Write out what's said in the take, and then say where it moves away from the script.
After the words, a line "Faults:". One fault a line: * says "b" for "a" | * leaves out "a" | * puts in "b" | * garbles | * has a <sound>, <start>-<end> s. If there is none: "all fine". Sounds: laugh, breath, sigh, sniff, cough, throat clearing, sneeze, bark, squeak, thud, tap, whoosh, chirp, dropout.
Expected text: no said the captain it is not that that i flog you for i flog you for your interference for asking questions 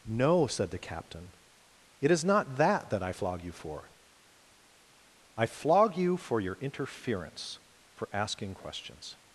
no said the captain it is not that that i flog you for i flog you for your interference for asking questions
Faults:
all fine